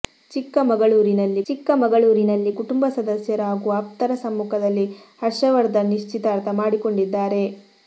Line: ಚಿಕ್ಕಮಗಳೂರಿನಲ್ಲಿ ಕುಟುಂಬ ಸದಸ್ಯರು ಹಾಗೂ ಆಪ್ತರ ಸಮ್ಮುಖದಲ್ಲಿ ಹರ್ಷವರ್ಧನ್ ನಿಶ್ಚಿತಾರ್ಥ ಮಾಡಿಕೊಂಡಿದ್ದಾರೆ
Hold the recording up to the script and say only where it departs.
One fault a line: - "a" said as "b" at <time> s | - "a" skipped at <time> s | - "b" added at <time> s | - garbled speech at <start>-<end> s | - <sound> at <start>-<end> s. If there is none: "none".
- "ಚಿಕ್ಕಮಗಳೂರಿನಲ್ಲಿ" added at 1.4 s